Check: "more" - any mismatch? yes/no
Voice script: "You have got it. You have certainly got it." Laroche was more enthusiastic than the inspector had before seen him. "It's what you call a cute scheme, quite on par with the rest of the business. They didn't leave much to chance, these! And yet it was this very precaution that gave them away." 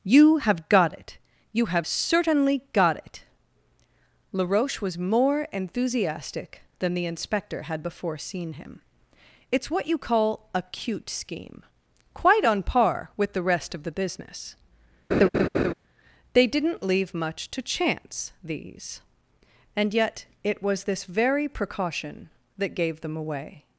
no